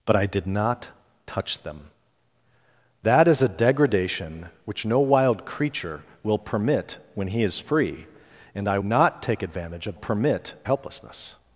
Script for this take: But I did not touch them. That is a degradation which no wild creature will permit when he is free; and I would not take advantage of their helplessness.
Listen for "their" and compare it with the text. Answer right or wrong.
wrong